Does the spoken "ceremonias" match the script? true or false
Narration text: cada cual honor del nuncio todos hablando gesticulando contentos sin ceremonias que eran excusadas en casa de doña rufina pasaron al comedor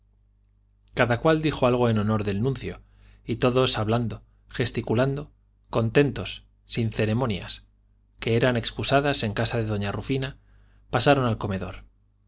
true